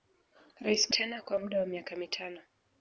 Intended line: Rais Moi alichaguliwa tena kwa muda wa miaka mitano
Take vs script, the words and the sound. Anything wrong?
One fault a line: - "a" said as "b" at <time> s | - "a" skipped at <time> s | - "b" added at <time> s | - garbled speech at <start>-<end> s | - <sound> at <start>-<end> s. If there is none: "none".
- "Moi alichaguliwa" skipped at 0.9 s